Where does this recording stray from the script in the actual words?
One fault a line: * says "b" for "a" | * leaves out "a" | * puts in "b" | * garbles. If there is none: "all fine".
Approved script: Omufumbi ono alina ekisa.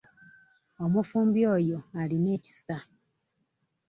* says "oyo" for "ono"